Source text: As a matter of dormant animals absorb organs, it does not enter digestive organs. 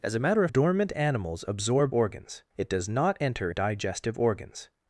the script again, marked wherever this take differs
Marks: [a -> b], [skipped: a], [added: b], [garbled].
As a matter of dormant animals absorb organs, it does not enter digestive organs.